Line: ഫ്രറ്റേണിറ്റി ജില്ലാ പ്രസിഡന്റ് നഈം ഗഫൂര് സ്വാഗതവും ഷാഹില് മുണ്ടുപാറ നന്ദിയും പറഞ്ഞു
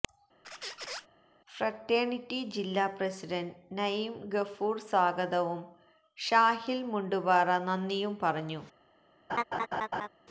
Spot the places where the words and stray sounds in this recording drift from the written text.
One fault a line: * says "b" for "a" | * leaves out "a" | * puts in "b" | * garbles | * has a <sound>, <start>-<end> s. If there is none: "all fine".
* has a squeak, 0.4-1.1 s
* has a laugh, 9.3-10.1 s